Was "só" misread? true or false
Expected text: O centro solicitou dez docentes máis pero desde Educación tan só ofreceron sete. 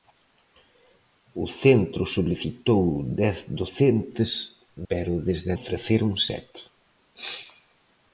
true